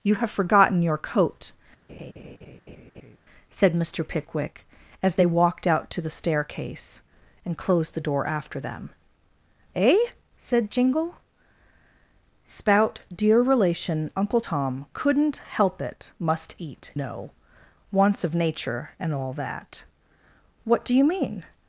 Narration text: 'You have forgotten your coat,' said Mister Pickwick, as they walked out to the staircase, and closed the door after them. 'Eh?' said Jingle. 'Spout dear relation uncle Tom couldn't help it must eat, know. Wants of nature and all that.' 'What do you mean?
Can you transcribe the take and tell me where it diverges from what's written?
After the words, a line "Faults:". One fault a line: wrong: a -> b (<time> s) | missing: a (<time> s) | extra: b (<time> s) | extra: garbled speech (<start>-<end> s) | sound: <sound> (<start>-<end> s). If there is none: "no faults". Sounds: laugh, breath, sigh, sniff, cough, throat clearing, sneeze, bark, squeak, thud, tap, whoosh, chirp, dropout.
'You have forgotten your coat,' said Mister Pickwick, as they walked out to the staircase, and closed the door after them. 'Eh?' said Jingle. 'Spout dear relation uncle Tom couldn't help it must eat, know. Wants of nature and all that.' 'What do you mean?
Faults:
sound: laugh (1.9-3.2 s)